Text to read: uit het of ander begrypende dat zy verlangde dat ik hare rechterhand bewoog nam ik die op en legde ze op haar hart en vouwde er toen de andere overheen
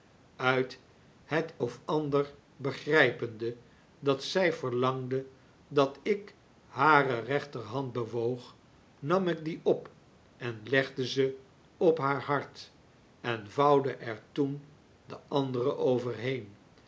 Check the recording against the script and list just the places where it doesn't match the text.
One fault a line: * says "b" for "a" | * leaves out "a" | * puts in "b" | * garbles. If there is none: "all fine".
all fine